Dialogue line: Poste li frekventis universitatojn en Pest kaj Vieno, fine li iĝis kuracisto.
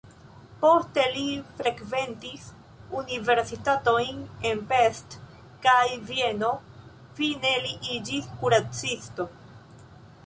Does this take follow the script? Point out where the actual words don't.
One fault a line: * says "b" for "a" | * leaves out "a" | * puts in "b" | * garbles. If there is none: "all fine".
all fine